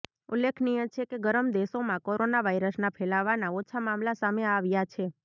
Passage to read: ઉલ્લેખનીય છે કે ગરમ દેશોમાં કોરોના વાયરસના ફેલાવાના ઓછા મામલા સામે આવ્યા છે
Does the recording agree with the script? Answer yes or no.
yes